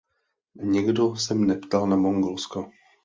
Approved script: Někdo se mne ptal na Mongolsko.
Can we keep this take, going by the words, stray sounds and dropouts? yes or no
yes